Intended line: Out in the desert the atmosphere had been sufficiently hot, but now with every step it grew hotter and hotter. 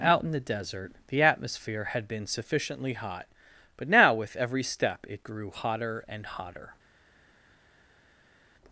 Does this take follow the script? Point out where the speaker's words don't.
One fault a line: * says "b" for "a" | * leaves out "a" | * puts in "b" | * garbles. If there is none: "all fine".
all fine